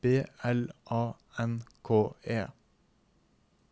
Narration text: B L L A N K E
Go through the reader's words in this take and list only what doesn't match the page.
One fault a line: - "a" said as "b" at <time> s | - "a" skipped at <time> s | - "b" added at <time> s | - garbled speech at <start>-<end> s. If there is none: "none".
- "L" skipped at 0.7 s